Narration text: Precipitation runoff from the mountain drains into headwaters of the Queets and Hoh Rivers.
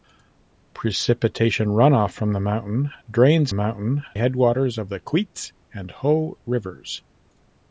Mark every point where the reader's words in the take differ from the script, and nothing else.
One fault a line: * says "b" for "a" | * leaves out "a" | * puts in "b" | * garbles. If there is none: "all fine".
* says "mountain" for "into"